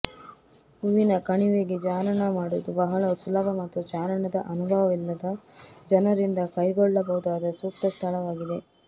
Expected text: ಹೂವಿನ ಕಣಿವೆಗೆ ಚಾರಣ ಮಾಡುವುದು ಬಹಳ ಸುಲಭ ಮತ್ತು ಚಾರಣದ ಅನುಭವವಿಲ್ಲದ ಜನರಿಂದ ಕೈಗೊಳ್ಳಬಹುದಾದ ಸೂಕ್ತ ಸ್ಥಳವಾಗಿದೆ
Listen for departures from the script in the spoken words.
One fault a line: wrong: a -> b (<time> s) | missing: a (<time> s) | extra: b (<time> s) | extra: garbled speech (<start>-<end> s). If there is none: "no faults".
no faults